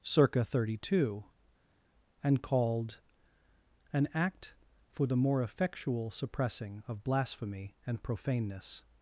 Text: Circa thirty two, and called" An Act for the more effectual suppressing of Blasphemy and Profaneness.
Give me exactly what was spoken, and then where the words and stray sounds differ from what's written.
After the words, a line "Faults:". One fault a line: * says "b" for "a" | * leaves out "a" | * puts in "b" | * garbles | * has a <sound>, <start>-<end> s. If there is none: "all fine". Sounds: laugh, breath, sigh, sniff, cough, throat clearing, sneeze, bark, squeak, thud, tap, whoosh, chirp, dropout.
Circa thirty two, and called" An Act for the more effectual suppressing of Blasphemy and Profaneness.
Faults:
all fine